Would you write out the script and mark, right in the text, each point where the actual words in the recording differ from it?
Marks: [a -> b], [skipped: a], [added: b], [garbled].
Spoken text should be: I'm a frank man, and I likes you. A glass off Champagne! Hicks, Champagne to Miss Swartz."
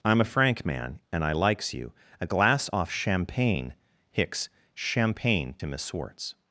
I'm a frank man, and I likes you. A glass off Champagne! Hicks, Champagne to Miss Swartz."